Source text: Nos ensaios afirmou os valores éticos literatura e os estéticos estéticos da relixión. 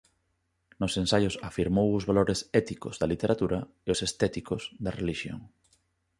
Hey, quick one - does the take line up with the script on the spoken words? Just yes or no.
no